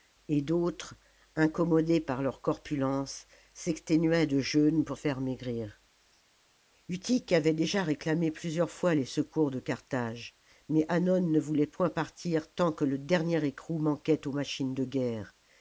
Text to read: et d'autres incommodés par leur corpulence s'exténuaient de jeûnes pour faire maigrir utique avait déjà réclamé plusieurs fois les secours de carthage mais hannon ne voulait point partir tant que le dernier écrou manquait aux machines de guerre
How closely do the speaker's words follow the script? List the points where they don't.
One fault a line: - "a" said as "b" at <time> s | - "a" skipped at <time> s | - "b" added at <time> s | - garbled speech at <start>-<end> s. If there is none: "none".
none